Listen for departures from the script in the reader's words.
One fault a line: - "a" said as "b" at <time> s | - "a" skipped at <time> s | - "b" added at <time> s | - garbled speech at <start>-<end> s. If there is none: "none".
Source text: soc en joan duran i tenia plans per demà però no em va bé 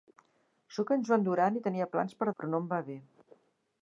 - "demà" skipped at 2.3 s